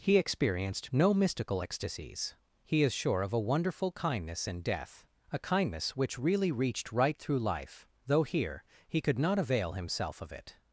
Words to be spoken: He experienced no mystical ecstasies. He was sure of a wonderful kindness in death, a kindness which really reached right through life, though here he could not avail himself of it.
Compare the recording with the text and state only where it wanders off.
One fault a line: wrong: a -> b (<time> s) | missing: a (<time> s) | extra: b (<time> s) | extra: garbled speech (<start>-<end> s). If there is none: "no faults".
wrong: was -> is (2.8 s)